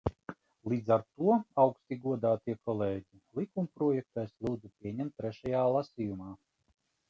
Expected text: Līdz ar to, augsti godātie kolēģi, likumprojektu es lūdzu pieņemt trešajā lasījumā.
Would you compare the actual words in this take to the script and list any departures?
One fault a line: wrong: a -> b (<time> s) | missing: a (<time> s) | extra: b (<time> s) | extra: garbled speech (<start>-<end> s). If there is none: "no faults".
no faults